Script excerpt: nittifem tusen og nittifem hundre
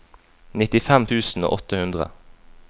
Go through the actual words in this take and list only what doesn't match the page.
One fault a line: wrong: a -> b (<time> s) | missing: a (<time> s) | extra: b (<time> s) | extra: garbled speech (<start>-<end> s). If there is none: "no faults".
wrong: nittifem -> åtte (1.6 s)